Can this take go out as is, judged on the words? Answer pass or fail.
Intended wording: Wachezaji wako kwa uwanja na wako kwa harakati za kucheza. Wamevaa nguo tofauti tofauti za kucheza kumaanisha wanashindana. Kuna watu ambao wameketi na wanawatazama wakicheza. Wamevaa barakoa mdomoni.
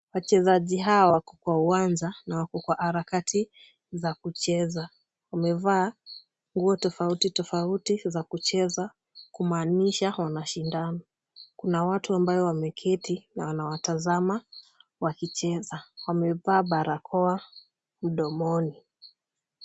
fail